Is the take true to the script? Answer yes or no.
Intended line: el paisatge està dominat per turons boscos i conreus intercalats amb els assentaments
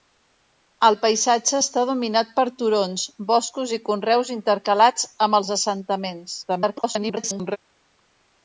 no